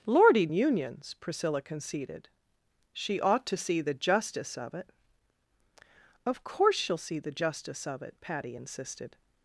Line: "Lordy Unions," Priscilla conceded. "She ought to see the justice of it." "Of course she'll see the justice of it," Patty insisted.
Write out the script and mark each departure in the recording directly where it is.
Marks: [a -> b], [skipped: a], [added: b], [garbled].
"Lordy Unions," Priscilla conceded. "She ought to see the justice of it." "Of course she'll see the justice of it," Patty insisted.